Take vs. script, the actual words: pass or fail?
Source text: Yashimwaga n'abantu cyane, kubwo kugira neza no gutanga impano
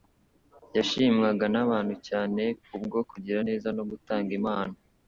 pass